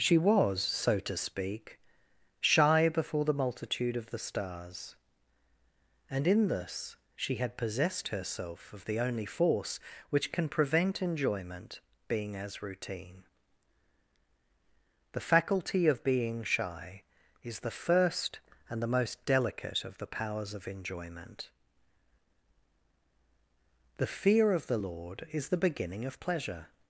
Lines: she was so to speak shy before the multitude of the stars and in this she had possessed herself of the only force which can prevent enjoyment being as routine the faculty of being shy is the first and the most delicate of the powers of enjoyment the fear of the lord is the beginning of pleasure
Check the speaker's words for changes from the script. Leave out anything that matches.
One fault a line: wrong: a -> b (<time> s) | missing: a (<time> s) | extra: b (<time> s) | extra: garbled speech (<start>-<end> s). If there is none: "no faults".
no faults